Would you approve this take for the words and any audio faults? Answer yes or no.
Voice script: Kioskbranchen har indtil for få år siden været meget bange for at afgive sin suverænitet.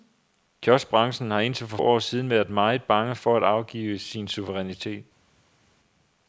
no